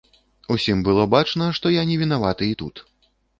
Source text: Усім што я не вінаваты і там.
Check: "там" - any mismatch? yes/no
yes